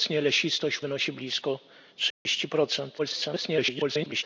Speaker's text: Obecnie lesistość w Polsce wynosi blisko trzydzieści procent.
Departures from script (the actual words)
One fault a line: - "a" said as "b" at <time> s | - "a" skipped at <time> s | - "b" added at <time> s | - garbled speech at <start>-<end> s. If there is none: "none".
- "Polsce" skipped at 0.8 s
- garbled speech at 3.0-4.2 s